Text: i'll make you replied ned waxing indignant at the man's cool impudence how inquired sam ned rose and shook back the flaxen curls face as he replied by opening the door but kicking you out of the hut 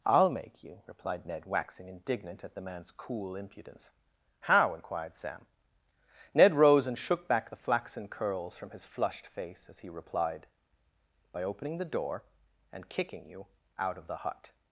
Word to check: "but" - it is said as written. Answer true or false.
false